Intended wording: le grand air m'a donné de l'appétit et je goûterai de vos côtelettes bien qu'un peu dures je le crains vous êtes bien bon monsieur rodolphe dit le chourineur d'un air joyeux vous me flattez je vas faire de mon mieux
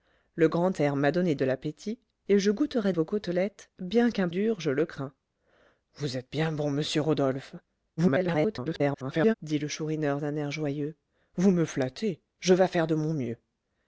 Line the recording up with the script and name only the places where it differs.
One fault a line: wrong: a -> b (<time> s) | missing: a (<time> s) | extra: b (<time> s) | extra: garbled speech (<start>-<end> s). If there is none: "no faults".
missing: de (2.9 s)
missing: peu (4.3 s)
extra: garbled speech (8.0-9.3 s)